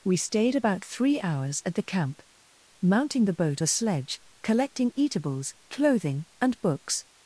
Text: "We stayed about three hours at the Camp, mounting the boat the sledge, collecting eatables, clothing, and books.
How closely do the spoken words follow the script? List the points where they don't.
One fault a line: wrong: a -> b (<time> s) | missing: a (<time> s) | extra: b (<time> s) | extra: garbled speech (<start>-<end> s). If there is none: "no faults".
no faults